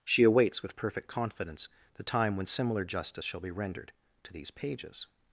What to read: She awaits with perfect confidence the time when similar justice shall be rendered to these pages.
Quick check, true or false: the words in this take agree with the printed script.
true